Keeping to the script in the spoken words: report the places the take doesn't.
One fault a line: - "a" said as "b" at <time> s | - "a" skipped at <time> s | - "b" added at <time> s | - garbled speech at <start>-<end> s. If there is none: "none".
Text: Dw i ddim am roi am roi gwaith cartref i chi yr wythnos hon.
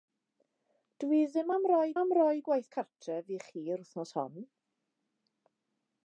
none